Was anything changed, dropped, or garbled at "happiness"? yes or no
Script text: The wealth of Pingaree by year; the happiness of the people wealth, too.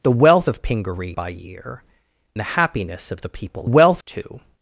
no